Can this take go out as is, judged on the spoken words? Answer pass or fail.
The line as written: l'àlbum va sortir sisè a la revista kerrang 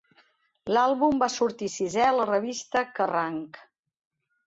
pass